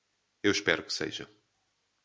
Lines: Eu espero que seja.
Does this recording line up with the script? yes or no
yes